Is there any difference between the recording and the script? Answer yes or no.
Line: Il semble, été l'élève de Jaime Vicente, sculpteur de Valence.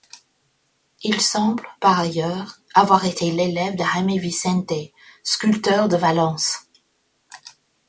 yes